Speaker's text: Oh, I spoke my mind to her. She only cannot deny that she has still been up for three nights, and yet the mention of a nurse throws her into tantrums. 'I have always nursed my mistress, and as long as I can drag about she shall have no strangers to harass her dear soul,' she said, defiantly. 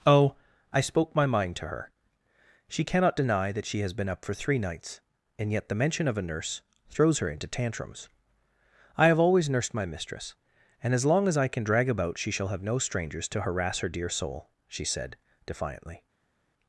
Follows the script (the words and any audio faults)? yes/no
no